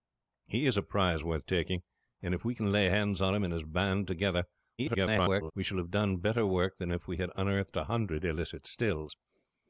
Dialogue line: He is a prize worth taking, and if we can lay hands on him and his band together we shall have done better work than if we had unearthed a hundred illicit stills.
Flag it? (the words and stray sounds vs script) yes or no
yes